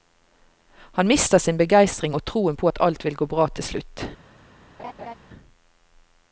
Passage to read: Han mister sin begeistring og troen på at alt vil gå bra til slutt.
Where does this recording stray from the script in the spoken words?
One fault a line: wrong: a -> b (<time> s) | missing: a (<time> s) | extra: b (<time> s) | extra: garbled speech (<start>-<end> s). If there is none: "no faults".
no faults